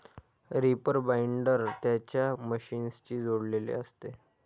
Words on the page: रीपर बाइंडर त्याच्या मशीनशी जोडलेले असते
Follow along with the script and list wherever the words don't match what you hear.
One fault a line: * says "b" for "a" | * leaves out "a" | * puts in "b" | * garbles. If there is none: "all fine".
all fine